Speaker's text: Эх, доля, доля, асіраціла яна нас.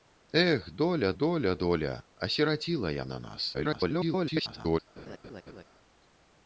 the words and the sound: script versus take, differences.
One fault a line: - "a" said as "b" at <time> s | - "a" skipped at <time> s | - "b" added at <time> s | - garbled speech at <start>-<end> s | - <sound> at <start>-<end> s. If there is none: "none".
- "доля" added at 1.6 s
- garbled speech at 3.5-4.8 s
- laugh at 5.0-5.6 s